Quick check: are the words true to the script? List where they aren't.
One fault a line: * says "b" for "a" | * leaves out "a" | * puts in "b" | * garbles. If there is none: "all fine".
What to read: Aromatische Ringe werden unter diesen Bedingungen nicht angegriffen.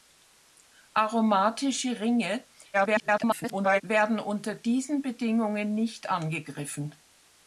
* garbles